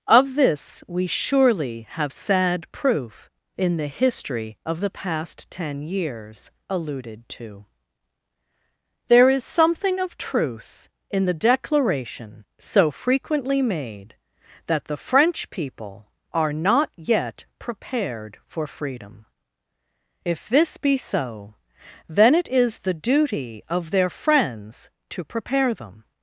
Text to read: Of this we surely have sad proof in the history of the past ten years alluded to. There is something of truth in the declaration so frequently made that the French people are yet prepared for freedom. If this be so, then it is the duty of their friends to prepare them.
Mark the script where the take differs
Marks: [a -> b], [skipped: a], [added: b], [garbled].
Of this we surely have sad proof in the history of the past ten years alluded to. There is something of truth in the declaration so frequently made that the French people are [added: not] yet prepared for freedom. If this be so, then it is the duty of their friends to prepare them.